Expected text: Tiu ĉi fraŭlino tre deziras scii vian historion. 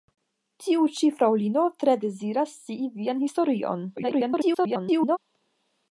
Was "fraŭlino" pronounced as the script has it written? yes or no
yes